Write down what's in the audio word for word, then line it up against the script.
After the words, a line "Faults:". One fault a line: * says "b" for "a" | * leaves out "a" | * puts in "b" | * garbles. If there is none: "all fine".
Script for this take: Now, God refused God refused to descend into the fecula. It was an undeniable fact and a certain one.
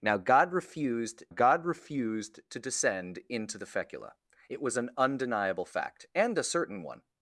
Now, God refused God refused to descend into the fecula. It was an undeniable fact and a certain one.
Faults:
all fine